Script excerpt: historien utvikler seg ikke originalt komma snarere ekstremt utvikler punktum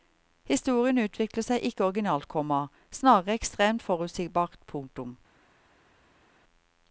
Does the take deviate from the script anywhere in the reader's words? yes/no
yes